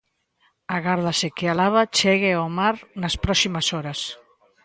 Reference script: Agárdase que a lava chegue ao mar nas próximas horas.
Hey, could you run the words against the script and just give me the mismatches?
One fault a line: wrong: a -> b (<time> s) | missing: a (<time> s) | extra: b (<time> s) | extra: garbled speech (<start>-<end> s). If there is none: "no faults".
no faults